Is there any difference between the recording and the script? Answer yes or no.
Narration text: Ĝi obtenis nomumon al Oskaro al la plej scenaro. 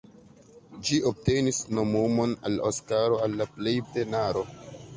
no